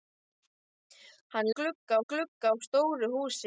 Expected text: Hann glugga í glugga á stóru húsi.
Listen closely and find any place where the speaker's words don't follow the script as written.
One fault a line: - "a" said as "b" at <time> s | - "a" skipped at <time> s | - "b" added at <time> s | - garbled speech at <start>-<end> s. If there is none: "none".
none